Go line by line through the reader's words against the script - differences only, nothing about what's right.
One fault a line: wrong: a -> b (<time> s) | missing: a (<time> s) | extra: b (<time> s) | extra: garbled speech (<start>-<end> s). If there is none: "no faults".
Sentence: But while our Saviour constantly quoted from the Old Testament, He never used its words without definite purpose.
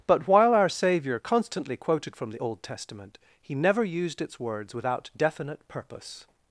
no faults